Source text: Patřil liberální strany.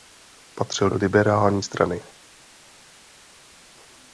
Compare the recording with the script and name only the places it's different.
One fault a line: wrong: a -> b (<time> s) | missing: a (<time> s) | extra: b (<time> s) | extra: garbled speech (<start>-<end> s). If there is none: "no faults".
no faults